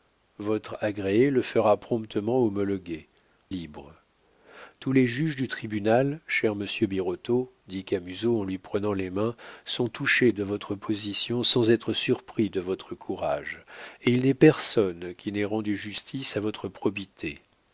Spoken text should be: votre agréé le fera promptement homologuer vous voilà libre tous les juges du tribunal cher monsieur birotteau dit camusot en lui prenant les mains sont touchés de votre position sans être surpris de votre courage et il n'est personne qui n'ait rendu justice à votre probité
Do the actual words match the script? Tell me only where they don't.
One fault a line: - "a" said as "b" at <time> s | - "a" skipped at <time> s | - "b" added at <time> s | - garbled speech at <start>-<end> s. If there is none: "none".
- "vous voilà" skipped at 3.1 s